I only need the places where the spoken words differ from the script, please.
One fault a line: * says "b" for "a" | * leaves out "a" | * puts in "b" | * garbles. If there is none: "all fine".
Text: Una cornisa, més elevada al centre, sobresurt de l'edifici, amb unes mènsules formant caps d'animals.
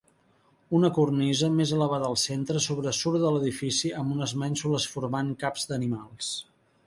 all fine